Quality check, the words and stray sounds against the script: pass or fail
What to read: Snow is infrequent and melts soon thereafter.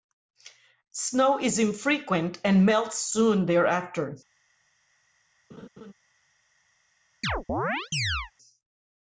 fail